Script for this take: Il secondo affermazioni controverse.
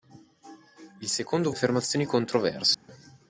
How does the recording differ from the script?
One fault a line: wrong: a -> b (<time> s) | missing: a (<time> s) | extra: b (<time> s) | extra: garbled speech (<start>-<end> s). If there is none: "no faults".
no faults